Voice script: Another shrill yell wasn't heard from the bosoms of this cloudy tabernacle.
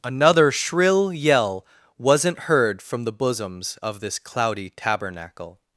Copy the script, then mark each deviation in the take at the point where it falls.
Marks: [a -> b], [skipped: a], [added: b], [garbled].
Another shrill yell wasn't heard from the bosoms of this cloudy tabernacle.